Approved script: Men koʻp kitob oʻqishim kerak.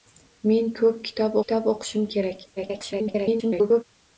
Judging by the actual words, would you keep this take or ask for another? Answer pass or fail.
fail